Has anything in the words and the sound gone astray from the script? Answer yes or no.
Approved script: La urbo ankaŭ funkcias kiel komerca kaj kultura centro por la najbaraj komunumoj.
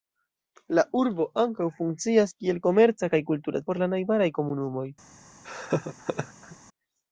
yes